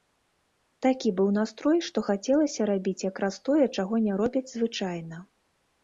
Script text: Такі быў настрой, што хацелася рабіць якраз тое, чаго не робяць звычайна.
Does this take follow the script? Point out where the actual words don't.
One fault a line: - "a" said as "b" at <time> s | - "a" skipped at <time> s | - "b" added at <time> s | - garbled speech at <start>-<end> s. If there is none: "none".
none